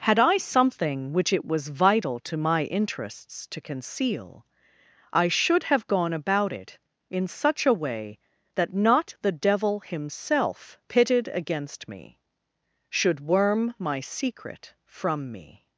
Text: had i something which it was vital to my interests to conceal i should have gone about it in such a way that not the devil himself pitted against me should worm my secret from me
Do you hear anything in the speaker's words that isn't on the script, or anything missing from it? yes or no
no